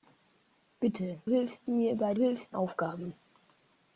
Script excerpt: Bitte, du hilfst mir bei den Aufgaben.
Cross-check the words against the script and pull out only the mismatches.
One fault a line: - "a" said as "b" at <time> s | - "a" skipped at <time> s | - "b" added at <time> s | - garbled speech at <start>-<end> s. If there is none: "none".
- "du" skipped at 1.2 s
- "den" said as "hilfst" at 2.2 s